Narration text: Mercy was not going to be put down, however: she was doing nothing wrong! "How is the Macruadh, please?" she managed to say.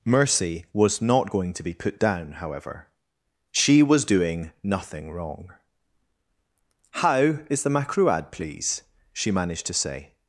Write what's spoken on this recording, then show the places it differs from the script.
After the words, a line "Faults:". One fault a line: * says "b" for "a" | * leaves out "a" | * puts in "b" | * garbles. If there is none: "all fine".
Mercy was not going to be put down, however: she was doing nothing wrong! "How is the Macruadh, please?" she managed to say.
Faults:
all fine